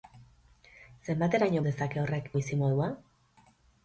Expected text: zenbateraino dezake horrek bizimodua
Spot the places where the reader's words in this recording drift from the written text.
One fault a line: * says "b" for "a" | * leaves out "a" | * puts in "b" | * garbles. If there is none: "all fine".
all fine